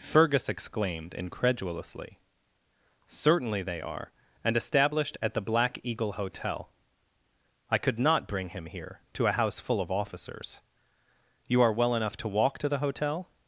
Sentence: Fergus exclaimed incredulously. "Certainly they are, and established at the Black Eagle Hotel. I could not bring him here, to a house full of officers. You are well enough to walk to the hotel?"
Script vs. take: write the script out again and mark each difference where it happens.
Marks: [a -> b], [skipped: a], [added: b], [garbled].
Fergus exclaimed incredulously. "Certainly they are, and established at the Black Eagle Hotel. I could not bring him here, to a house full of officers. You are well enough to walk to the hotel?"